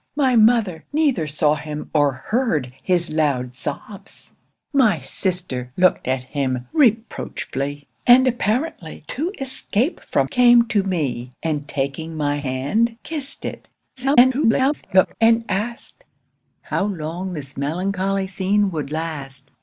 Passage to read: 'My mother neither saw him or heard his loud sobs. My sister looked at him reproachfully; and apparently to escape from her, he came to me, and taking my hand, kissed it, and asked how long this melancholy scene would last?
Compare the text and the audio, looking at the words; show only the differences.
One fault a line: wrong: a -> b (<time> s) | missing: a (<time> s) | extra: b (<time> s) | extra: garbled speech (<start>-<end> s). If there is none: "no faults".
missing: her he (10.3 s)
extra: garbled speech (14.0-15.2 s)